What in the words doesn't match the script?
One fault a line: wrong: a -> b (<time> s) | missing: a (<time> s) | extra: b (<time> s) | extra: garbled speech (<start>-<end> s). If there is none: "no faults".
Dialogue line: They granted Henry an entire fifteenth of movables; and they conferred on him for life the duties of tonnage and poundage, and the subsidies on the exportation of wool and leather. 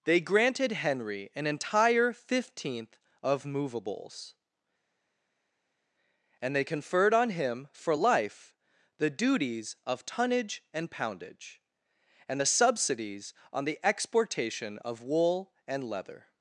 no faults